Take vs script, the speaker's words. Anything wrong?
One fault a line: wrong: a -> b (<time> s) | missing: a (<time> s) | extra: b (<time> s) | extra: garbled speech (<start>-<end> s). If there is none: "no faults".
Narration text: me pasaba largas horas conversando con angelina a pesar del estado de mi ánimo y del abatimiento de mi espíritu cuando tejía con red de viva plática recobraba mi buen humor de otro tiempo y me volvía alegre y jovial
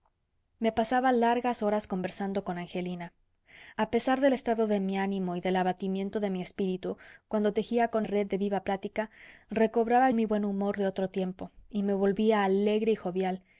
no faults